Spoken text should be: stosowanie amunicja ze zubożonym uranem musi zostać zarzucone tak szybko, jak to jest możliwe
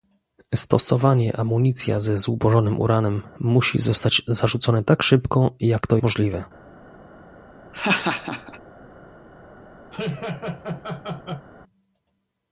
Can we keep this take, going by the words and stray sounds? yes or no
no